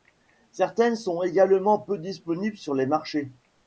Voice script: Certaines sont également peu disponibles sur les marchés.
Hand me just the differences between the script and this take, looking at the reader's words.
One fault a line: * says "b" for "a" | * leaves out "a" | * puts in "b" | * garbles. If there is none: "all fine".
all fine